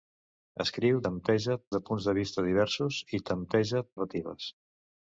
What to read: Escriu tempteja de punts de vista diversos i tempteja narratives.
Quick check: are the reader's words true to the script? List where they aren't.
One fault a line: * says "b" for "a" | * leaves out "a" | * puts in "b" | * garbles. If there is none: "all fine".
all fine